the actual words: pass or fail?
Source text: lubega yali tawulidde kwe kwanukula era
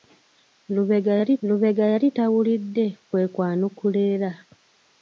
fail